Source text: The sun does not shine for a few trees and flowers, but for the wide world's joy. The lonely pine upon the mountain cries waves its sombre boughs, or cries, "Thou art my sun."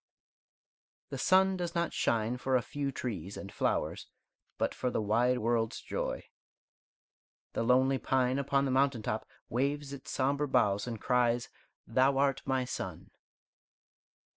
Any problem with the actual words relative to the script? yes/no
yes